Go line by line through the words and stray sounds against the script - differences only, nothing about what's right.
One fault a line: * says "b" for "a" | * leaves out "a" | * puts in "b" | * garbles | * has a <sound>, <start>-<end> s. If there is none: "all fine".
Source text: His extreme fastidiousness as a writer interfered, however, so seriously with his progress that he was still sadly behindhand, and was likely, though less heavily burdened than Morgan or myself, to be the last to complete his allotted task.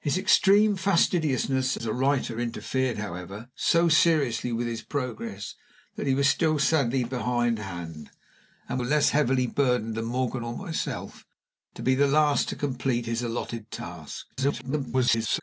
* leaves out "was likely though"
* garbles